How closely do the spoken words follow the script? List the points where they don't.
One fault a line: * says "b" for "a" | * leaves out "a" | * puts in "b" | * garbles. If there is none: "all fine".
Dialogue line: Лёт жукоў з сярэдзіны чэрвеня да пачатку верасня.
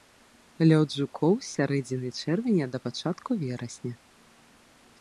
all fine